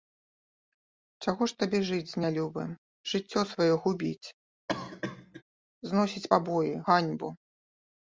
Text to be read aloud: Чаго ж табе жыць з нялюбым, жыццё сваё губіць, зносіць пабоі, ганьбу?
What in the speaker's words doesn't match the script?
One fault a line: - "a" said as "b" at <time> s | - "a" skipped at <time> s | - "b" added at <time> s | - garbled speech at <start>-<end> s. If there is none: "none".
none